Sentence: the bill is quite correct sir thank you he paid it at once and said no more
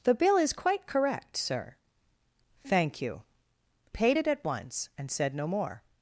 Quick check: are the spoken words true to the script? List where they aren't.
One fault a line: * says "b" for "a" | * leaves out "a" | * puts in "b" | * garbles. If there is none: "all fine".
* leaves out "he"